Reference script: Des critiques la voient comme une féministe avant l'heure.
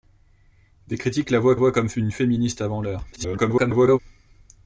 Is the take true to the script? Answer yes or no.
no